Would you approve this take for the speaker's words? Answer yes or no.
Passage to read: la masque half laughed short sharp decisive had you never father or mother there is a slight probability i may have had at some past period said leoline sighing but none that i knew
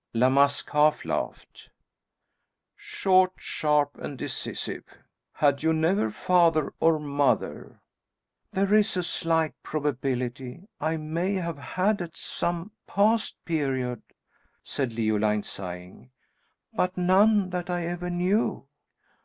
no